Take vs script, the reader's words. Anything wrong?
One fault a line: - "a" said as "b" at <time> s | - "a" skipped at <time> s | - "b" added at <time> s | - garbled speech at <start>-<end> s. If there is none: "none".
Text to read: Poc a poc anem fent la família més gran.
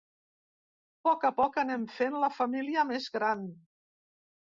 none